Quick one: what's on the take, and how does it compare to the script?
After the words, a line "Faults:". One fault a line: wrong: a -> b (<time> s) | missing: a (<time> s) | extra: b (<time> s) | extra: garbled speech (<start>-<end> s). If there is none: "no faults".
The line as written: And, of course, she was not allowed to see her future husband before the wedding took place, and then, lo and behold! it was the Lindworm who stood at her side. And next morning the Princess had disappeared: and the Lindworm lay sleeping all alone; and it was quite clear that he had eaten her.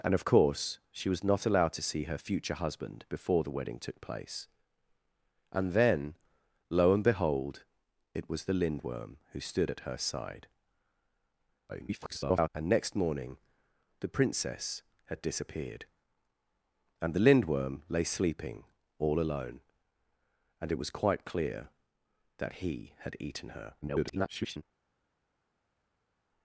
And, of course, she was not allowed to see her future husband before the wedding took place, and then, lo and behold! it was the Lindworm who stood at her side. [garbled] And next morning the Princess had disappeared: and the Lindworm lay sleeping all alone; and it was quite clear that he had eaten her. [garbled]
Faults:
extra: garbled speech (11.7-12.5 s)
extra: garbled speech (23.8-24.6 s)